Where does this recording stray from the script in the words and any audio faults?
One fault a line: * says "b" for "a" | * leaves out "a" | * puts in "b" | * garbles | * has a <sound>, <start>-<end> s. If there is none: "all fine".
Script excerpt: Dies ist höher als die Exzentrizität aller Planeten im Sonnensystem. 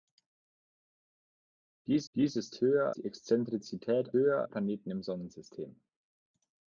* puts in "dies"
* leaves out "als"
* says "höher" for "aller"